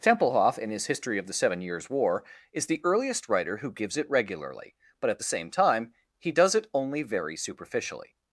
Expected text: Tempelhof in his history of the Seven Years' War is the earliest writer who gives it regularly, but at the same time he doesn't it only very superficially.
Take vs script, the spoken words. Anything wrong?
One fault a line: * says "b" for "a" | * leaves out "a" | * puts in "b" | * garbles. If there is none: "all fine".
* says "does" for "doesn't"